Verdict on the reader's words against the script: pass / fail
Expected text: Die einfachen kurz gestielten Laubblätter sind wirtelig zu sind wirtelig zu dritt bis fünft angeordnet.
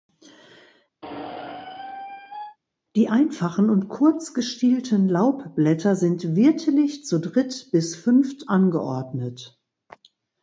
fail